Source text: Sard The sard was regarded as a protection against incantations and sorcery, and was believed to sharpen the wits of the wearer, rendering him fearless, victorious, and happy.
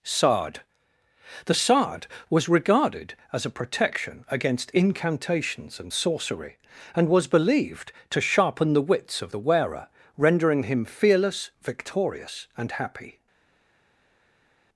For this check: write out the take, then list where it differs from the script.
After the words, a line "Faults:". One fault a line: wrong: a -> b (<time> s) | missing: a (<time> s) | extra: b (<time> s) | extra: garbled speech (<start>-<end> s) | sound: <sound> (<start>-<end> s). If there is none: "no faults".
Sard The sard was regarded as a protection against incantations and sorcery, and was believed to sharpen the wits of the wearer, rendering him fearless, victorious, and happy.
Faults:
no faults